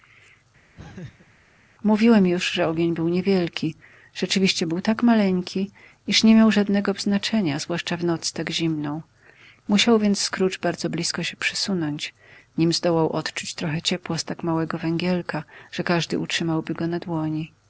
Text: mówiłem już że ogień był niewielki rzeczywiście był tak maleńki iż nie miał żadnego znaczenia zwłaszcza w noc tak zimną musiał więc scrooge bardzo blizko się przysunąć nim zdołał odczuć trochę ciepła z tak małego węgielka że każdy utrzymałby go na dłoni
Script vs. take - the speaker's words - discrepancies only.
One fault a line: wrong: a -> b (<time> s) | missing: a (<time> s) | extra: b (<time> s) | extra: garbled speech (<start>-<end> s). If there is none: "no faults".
no faults